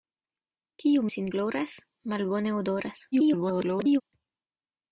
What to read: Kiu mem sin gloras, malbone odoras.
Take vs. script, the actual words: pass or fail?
fail